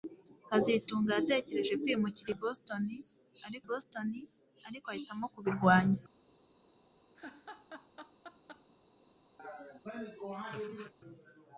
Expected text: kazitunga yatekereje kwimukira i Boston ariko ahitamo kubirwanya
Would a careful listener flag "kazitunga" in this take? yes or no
no